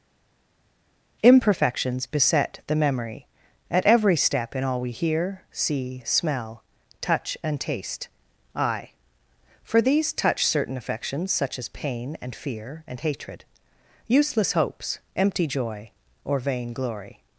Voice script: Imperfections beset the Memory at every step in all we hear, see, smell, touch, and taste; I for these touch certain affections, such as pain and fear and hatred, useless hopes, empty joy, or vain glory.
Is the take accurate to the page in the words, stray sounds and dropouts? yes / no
yes